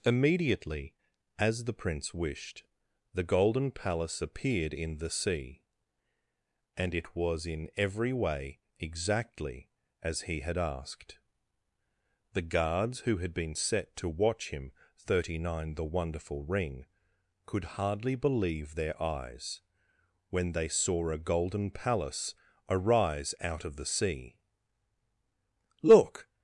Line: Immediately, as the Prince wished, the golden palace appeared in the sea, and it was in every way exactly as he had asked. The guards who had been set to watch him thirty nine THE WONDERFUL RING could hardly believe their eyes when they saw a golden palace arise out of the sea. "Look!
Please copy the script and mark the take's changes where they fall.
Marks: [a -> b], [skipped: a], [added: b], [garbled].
Immediately, as the Prince wished, the golden palace appeared in the sea, and it was in every way exactly as he had asked. The guards who had been set to watch him thirty nine THE WONDERFUL RING could hardly believe their eyes when they saw a golden palace arise out of the sea. "Look!